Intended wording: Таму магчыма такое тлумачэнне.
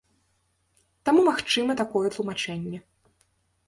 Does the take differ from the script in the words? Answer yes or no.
no